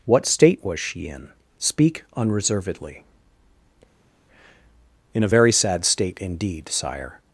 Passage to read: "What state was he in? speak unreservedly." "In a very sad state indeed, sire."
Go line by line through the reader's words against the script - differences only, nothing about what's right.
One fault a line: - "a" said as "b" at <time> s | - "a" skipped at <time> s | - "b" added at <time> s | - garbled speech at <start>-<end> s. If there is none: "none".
- "he" said as "she" at 0.8 s